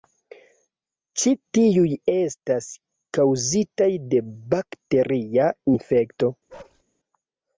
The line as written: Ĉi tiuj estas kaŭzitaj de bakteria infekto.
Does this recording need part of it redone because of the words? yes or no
no